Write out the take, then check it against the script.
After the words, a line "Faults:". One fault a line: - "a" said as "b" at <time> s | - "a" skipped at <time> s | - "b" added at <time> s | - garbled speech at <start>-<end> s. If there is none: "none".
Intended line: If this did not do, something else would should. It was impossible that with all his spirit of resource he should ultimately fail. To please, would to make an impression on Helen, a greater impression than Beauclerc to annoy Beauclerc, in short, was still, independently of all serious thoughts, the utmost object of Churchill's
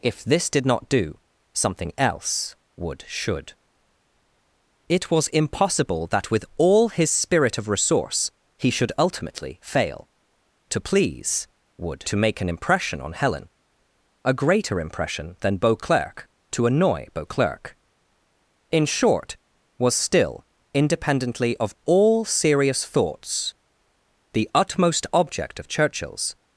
If this did not do, something else would should. It was impossible that with all his spirit of resource he should ultimately fail. To please, would to make an impression on Helen, a greater impression than Beauclerc to annoy Beauclerc, in short, was still, independently of all serious thoughts, the utmost object of Churchill's
Faults:
none